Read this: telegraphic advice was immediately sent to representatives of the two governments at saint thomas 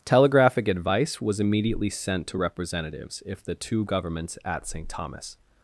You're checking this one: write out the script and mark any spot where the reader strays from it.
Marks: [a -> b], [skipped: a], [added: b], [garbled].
telegraphic advice was immediately sent to representatives [of -> if] the two governments at saint thomas